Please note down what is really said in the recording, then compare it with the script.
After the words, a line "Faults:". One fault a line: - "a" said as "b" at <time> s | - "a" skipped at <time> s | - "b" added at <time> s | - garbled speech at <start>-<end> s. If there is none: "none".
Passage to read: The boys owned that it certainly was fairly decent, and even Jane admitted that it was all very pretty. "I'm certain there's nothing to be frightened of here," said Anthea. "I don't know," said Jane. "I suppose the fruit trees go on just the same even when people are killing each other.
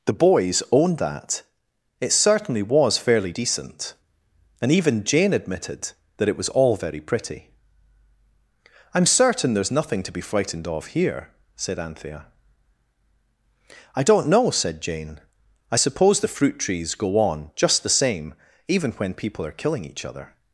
The boys owned that it certainly was fairly decent, and even Jane admitted that it was all very pretty. "I'm certain there's nothing to be frightened of here," said Anthea. "I don't know," said Jane. "I suppose the fruit trees go on just the same even when people are killing each other.
Faults:
none